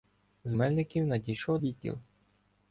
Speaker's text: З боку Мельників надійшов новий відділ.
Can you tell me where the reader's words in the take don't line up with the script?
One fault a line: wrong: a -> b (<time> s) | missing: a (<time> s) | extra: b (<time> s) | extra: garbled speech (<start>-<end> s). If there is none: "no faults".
missing: боку (0.6 s)
missing: новий (1.6 s)